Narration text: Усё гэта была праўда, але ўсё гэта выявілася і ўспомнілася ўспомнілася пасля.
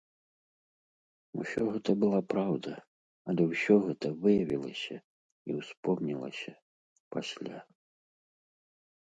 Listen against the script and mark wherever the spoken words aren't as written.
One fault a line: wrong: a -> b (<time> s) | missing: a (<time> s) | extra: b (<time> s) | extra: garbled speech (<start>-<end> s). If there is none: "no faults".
missing: ўспомнілася (6.5 s)